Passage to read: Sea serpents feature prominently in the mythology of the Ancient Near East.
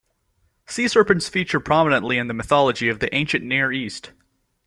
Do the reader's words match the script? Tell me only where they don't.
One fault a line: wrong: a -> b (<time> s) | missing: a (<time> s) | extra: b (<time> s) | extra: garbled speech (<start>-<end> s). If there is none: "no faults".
no faults